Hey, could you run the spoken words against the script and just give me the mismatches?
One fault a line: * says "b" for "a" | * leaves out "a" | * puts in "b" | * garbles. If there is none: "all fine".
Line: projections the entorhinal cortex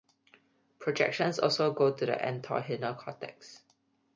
* puts in "also go to"